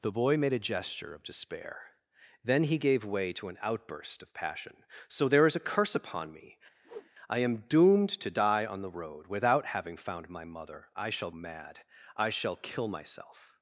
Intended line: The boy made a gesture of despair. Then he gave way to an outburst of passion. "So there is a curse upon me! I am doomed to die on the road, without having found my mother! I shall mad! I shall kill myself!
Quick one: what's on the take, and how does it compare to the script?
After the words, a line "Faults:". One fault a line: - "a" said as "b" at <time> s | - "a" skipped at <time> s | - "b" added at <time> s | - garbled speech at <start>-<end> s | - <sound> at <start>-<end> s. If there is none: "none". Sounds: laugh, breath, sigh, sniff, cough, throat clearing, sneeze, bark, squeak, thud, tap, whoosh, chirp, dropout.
The boy made a gesture of despair. Then he gave way to an outburst of passion. "So there is a curse upon me! I am doomed to die on the road, without having found my mother! I shall mad! I shall kill myself!
Faults:
- whoosh at 6.8-7.1 s